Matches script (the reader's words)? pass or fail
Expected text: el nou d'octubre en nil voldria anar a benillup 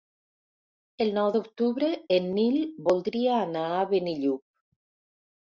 pass